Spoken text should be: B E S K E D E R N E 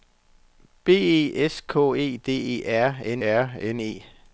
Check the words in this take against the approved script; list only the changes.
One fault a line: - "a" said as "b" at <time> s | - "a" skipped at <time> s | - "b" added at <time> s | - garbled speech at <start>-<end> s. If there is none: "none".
- "R N" added at 3.3 s